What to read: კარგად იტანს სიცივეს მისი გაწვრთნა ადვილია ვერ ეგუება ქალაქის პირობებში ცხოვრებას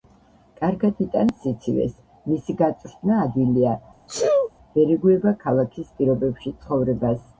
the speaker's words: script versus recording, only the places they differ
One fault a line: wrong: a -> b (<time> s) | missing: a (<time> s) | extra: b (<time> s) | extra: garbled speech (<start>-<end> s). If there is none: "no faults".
no faults